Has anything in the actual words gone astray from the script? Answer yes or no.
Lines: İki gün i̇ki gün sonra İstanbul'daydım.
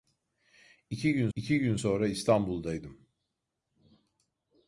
no